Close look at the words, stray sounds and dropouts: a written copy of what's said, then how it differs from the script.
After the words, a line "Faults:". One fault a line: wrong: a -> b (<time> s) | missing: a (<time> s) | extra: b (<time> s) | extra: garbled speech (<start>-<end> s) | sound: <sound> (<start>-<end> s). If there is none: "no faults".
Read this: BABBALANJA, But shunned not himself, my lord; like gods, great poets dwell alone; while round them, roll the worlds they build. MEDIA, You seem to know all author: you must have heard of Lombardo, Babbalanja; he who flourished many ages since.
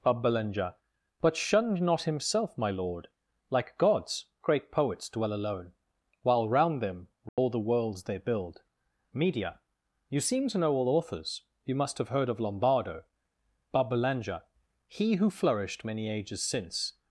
BABBALANJA, But shunned not himself, my lord; like gods, great poets dwell alone; while round them, roll the worlds they build. MEDIA, You seem to know all authors: you must have heard of Lombardo, Babbalanja; he who flourished many ages since.
Faults:
sound: dropout (7.3-7.4 s)
wrong: author -> authors (10.9 s)